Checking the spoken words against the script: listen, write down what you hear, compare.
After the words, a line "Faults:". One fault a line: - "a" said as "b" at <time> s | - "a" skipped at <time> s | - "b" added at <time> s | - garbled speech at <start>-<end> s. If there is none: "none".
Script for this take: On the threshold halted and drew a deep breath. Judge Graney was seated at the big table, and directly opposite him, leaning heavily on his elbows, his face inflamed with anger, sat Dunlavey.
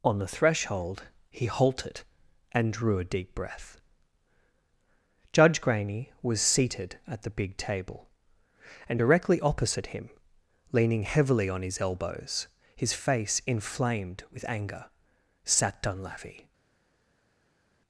On the threshold he halted and drew a deep breath. Judge Graney was seated at the big table, and directly opposite him, leaning heavily on his elbows, his face inflamed with anger, sat Dunlavey.
Faults:
- "he" added at 1.3 s